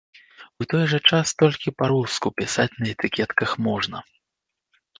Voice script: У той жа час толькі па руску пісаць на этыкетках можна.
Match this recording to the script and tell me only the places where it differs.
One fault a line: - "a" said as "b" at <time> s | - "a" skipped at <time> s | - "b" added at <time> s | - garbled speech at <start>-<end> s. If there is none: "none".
none